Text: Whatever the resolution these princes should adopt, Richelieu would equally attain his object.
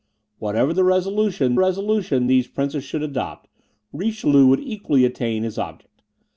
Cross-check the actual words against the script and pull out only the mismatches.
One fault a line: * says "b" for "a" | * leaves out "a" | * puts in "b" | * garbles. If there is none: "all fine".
* puts in "resolution"